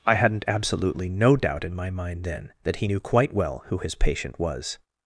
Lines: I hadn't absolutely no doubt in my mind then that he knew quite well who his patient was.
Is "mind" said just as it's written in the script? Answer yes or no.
yes